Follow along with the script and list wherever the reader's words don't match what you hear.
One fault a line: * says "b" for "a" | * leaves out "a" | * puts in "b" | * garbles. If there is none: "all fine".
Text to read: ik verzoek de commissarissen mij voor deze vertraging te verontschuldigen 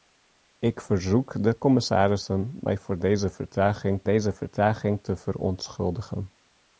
* puts in "deze vertraging"